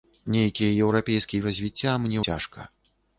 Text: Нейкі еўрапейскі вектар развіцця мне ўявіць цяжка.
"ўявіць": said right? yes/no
no